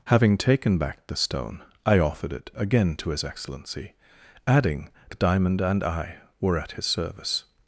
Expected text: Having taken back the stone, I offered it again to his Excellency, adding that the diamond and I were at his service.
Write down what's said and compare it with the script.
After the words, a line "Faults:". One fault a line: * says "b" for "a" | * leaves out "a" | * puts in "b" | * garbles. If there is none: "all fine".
Having taken back the stone, I offered it again to his Excellency, adding the diamond and I were at his service.
Faults:
* leaves out "that"